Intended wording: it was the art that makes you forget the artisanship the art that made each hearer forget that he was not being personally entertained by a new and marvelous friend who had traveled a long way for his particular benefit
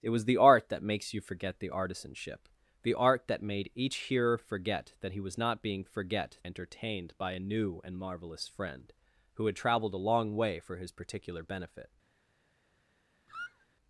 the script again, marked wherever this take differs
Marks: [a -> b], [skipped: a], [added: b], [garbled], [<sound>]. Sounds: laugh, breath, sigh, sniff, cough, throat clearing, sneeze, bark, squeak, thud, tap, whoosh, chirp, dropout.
it was the art that makes you forget the artisanship the art that made each hearer forget that he was not being [personally -> forget] entertained by a new and marvelous friend who had traveled a long way for his particular benefit [squeak]